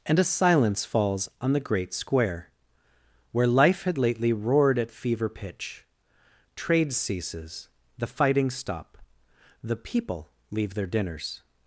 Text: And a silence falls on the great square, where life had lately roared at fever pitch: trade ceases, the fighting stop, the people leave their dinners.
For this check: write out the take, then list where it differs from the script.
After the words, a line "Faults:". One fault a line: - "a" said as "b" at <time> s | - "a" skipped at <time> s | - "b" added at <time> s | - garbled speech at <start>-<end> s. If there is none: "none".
And a silence falls on the great square, where life had lately roared at fever pitch: trade ceases, the fighting stop, the people leave their dinners.
Faults:
none